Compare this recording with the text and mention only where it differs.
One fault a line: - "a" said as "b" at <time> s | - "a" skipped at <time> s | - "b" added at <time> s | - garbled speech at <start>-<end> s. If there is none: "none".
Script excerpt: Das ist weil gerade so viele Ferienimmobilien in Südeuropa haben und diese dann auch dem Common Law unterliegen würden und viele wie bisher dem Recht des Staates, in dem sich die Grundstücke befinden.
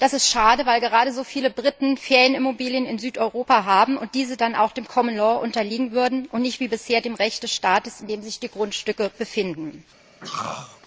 - "schade" added at 0.3 s
- "Briten" added at 1.5 s
- "viele" said as "nicht" at 6.4 s